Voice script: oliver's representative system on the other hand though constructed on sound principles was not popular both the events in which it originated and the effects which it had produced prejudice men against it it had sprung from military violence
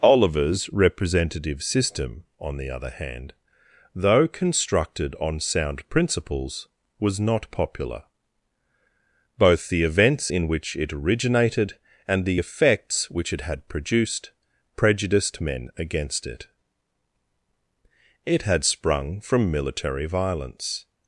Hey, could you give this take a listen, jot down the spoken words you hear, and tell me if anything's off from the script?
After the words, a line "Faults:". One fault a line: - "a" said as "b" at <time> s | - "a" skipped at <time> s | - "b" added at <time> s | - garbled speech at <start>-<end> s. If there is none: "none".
oliver's representative system on the other hand though constructed on sound principles was not popular both the events in which it originated and the effects which it had produced prejudiced men against it it had sprung from military violence
Faults:
- "prejudice" said as "prejudiced" at 14.8 s